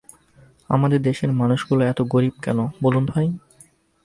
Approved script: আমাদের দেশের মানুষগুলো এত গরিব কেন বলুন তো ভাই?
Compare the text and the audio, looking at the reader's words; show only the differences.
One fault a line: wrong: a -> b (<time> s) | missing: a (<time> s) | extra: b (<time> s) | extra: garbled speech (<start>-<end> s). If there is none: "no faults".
missing: তো (3.0 s)